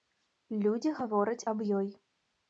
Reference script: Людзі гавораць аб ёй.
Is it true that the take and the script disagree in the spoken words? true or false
false